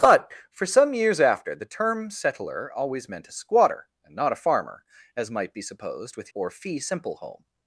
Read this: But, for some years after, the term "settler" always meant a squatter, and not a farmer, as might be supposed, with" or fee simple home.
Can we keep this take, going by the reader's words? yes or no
yes